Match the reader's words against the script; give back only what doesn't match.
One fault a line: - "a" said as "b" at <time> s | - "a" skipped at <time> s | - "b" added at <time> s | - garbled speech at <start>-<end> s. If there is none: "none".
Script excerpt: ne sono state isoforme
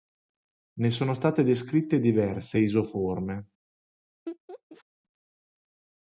- "descritte diverse" added at 1.4 s